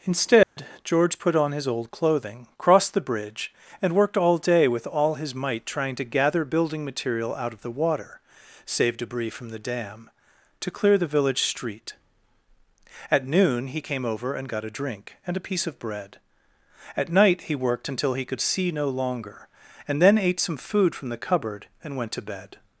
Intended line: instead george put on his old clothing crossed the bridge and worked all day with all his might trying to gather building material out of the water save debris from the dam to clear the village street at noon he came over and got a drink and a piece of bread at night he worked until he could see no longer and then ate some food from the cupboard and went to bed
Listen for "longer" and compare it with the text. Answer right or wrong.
right